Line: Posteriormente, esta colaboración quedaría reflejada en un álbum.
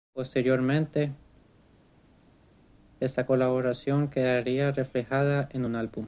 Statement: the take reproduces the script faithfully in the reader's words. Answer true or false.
true